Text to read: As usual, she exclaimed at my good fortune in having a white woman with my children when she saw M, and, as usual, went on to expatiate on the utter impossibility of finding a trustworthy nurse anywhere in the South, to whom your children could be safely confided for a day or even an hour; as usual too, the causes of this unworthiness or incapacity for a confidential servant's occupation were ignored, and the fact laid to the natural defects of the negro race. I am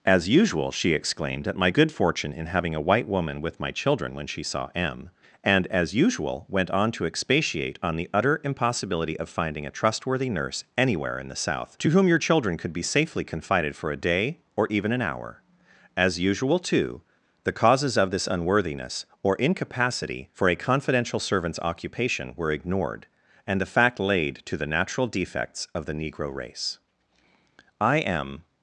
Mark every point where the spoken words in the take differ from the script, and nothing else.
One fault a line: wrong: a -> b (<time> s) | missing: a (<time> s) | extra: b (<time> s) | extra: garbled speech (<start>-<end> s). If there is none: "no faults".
no faults